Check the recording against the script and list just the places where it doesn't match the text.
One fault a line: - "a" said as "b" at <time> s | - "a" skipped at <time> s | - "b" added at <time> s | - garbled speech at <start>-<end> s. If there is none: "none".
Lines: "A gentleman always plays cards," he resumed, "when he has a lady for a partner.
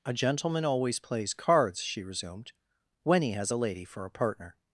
- "he" said as "she" at 1.8 s